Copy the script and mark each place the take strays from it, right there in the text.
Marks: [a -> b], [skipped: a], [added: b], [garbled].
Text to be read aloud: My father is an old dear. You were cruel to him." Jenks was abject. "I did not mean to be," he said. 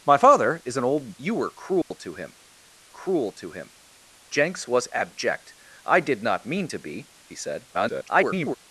My father is an old [skipped: dear.] You were cruel to him." [added: cruel to him] Jenks was abject. "I did not mean to be," he said. [garbled]